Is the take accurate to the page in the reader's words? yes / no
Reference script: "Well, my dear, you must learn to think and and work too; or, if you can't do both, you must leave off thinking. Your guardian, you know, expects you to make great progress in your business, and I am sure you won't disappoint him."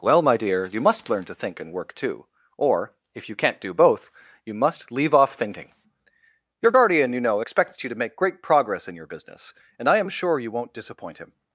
no